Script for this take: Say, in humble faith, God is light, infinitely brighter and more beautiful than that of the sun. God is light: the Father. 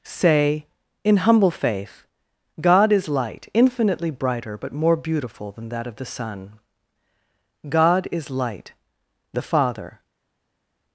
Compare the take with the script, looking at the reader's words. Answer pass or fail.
fail